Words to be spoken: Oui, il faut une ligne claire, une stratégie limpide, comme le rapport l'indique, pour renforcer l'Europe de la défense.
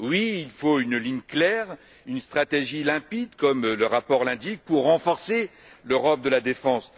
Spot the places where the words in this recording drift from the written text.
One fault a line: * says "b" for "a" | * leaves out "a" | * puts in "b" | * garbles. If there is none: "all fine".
all fine